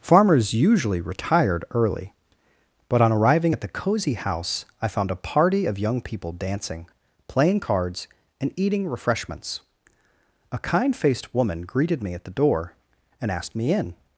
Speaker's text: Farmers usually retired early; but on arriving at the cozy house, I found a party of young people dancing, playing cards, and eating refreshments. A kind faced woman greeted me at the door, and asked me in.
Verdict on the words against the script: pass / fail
pass